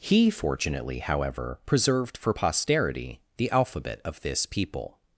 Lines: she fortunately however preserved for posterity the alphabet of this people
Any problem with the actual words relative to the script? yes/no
yes